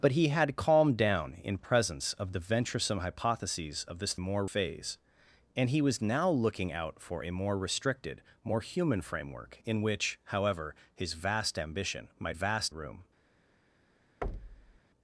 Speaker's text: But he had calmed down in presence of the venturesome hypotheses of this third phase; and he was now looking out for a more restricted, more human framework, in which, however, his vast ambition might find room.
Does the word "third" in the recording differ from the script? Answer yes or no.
yes